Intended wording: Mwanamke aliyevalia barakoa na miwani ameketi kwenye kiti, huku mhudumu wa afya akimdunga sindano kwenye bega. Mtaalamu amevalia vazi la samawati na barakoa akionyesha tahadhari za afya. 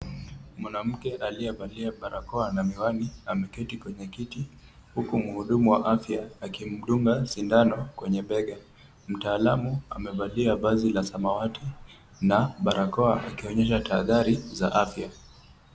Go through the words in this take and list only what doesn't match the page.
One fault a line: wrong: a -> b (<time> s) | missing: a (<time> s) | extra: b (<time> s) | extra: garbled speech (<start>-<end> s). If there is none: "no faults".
no faults